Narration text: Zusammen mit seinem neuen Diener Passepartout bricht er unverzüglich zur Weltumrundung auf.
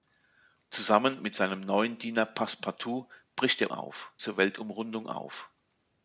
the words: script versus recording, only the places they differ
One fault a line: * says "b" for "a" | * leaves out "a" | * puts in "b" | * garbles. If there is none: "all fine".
* says "auf" for "unverzüglich"